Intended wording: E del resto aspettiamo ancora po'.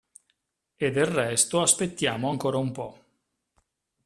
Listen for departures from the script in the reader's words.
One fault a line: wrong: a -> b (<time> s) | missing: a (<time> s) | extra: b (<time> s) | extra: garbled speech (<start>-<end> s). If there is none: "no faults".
extra: un (2.6 s)